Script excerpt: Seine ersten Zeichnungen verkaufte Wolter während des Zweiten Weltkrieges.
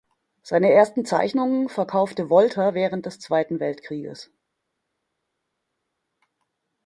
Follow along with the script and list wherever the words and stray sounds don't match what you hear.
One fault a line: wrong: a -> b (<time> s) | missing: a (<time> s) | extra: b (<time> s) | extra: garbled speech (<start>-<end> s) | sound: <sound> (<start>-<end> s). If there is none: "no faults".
no faults